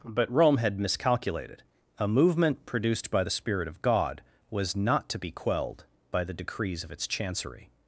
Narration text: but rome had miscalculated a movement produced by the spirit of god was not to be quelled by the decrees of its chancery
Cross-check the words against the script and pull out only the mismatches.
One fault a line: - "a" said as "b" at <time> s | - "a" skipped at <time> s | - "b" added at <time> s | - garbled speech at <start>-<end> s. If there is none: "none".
none